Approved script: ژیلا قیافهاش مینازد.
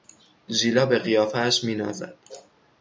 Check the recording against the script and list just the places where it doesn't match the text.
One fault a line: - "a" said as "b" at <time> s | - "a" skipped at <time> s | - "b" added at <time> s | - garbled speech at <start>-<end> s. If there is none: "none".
- "به" added at 0.8 s